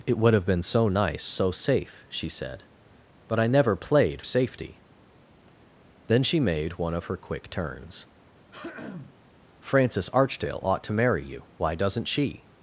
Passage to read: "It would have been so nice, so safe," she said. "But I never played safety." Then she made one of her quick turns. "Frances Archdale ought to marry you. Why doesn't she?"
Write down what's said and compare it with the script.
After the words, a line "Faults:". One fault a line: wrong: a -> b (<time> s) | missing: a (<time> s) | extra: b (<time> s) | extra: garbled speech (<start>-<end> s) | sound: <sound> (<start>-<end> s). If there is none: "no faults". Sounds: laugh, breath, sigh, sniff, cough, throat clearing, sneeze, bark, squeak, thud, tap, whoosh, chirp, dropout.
"It would have been so nice, so safe," she said. "But I never played safety." Then she made one of her quick turns. "Frances Archdale ought to marry you. Why doesn't she?"
Faults:
sound: throat clearing (8.5-9.2 s)